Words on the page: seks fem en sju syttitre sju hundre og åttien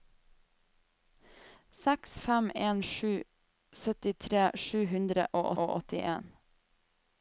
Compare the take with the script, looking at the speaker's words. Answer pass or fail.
fail